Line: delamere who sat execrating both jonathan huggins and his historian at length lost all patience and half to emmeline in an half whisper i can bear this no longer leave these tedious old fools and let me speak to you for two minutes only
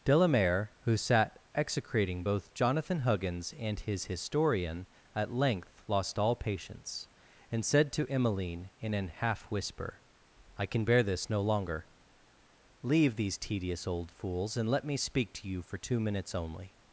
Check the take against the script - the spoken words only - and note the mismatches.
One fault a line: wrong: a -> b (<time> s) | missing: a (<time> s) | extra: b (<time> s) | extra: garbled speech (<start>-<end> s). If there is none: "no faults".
wrong: half -> said (7.6 s)